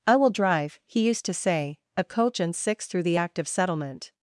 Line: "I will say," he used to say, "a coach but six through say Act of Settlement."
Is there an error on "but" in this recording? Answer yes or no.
yes